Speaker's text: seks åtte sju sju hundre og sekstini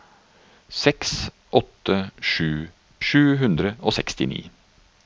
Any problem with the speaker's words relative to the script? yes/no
no